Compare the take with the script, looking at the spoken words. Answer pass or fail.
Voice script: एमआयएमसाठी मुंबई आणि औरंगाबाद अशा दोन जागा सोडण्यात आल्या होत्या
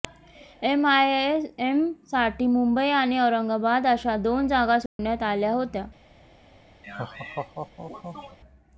pass